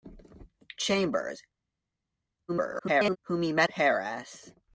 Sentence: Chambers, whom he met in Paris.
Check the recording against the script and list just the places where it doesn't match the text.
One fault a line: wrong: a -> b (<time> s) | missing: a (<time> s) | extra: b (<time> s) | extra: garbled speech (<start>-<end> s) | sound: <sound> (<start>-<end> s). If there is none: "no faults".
extra: garbled speech (2.5-3.2 s)
missing: in (3.7 s)